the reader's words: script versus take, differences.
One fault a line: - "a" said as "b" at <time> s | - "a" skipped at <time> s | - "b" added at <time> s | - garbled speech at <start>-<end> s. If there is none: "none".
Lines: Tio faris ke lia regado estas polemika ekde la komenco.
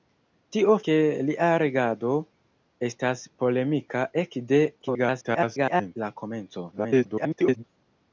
- "faris" skipped at 0.8 s
- garbled speech at 4.8-6.0 s
- garbled speech at 6.7-7.6 s